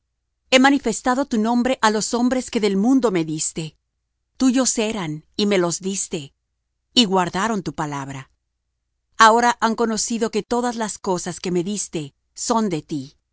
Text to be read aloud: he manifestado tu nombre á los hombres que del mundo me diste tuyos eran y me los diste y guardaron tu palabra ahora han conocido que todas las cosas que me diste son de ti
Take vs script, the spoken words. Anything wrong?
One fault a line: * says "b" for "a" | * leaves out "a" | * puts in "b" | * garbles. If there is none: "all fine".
all fine